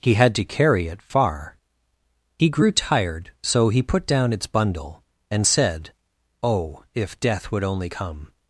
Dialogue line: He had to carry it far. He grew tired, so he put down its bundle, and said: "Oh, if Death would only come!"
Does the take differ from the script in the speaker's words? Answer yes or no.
no